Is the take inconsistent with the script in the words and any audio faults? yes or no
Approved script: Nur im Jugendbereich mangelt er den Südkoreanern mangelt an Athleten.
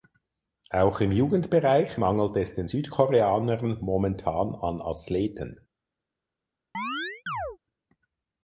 yes